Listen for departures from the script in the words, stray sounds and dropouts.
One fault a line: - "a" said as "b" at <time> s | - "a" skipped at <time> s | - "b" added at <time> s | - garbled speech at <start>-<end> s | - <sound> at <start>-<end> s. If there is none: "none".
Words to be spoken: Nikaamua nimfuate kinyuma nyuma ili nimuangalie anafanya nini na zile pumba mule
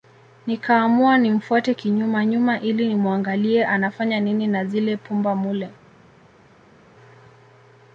none